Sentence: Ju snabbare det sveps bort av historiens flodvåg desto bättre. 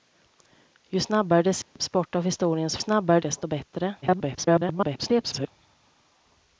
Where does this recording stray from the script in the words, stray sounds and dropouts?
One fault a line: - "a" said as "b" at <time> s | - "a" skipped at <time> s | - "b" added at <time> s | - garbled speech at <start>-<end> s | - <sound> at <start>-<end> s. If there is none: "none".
- dropout at 1.6-1.8 s
- "flodvåg" said as "snabbare" at 2.8 s
- garbled speech at 4.0-5.5 s